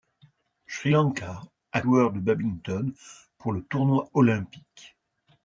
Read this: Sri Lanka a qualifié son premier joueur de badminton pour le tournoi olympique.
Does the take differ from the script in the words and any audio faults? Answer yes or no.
yes